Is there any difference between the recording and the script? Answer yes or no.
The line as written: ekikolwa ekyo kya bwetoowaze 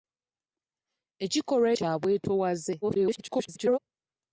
yes